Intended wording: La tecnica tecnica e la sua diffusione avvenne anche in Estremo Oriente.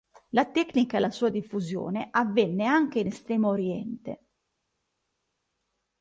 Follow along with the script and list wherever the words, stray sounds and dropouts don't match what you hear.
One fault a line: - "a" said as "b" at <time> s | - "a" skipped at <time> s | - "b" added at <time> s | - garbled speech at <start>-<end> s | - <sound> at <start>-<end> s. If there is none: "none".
- "tecnica" skipped at 1.0 s